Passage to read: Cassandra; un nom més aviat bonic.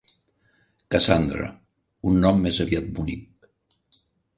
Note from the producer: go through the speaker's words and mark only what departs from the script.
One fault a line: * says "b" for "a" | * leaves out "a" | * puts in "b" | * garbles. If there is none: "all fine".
all fine